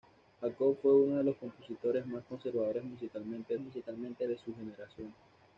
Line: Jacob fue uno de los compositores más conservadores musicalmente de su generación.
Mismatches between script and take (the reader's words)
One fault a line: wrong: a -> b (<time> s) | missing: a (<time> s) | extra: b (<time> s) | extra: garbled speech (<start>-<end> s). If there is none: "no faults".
extra: musicalmente (3.6 s)